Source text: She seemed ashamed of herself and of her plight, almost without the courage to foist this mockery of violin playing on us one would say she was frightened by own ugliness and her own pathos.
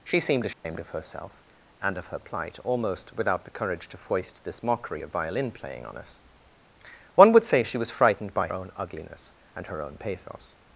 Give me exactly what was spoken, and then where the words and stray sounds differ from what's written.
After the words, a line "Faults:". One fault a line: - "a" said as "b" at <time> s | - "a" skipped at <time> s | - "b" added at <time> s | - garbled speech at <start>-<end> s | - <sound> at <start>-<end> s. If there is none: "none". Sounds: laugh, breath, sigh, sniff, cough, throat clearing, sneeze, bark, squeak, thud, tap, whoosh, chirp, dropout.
She seemed ashamed of herself and of her plight, almost without the courage to foist this mockery of violin playing on us one would say she was frightened by own ugliness and her own pathos.
Faults:
- dropout at 0.5-0.6 s